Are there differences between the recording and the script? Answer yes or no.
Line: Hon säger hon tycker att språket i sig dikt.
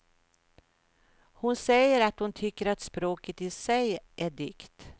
yes